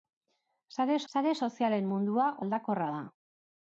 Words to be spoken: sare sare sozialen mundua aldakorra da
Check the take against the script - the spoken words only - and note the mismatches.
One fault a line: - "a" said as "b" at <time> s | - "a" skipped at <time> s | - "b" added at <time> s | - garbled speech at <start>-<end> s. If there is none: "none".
none